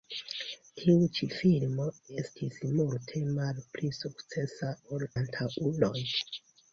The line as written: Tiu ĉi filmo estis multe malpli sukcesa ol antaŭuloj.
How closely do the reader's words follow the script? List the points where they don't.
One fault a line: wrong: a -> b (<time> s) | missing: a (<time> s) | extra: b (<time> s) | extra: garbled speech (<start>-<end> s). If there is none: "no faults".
no faults